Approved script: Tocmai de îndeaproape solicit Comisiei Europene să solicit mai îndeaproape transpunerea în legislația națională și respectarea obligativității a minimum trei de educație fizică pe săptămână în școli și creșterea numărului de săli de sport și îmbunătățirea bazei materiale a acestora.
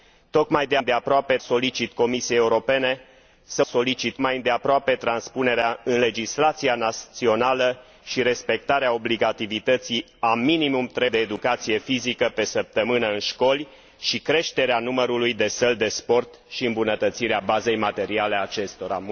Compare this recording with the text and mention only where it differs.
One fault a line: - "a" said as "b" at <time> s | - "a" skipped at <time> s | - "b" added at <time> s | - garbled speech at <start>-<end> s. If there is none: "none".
none